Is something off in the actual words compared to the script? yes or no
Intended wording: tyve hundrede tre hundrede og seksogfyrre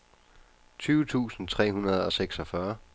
yes